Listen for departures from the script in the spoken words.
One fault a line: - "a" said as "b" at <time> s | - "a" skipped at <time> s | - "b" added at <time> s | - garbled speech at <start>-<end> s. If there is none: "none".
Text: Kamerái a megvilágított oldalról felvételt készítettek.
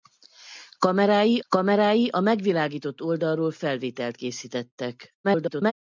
- "kamerái" added at 1.5 s
- garbled speech at 5.2-5.7 s